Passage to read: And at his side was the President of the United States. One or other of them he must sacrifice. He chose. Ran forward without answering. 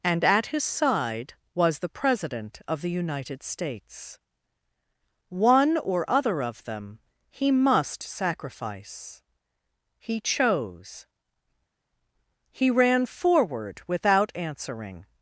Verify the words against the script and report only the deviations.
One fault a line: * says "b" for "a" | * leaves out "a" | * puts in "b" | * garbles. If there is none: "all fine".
* puts in "He"